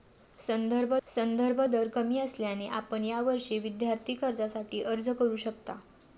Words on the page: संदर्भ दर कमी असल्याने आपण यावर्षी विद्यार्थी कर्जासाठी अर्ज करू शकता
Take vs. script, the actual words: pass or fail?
fail